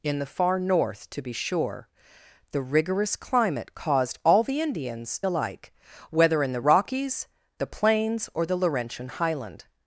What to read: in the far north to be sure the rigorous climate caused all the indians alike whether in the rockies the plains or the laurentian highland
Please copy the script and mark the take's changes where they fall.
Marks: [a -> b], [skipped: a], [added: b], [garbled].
in the far north to be sure the rigorous climate caused all the indians alike whether in the rockies the plains or the laurentian highland